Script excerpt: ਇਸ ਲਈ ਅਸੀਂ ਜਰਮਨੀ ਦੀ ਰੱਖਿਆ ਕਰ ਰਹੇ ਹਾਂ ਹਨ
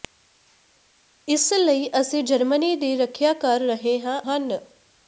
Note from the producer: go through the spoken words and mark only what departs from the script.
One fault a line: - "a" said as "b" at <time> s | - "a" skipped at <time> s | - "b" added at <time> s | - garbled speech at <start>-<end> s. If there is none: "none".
none